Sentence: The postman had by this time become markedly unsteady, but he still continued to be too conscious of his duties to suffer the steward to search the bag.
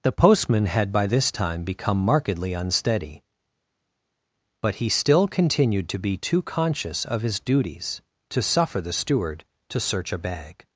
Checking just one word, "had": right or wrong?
right